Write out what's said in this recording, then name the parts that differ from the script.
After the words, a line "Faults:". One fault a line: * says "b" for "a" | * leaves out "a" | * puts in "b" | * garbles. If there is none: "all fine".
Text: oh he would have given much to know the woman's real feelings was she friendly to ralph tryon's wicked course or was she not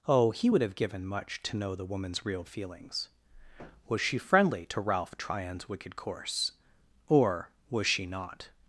oh he would have given much to know the woman's real feelings was she friendly to ralph tryon's wicked course or was she not
Faults:
all fine